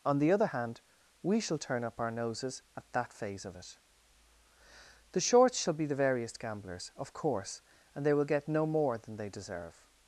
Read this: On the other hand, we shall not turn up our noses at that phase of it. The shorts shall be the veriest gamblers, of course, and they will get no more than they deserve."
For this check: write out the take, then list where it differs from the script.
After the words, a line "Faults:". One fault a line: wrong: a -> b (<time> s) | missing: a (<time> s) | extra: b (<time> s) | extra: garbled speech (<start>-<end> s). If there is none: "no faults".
On the other hand, we shall turn up our noses at that phase of it. The shorts shall be the veriest gamblers, of course, and they will get no more than they deserve."
Faults:
missing: not (1.6 s)